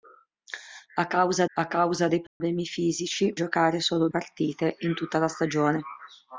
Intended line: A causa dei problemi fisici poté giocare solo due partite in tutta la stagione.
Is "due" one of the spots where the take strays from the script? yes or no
yes